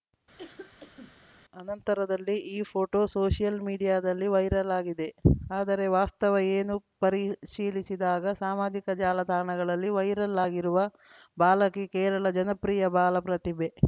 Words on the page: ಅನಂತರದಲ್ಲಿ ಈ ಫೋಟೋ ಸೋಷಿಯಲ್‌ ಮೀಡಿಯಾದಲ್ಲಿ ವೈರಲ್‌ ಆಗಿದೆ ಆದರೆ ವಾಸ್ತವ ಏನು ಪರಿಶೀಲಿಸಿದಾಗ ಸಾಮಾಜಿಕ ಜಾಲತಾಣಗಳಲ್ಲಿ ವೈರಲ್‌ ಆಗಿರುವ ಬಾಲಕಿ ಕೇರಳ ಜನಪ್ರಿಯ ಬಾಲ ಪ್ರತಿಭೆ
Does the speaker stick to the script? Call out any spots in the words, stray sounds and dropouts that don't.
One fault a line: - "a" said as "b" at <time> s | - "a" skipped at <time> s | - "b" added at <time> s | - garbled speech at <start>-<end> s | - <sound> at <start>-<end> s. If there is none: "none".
- cough at 0.4-1.2 s